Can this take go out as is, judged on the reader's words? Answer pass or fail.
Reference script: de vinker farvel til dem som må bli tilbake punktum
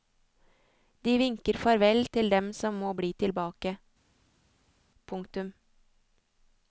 pass